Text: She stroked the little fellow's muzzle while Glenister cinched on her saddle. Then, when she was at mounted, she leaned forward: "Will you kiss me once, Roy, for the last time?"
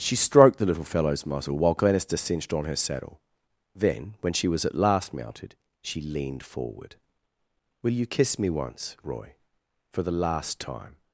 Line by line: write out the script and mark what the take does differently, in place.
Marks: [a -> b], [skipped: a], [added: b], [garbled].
She stroked the little fellow's muzzle while Glenister cinched on her saddle. Then, when she was at [added: last] mounted, she leaned forward: "Will you kiss me once, Roy, for the last time?"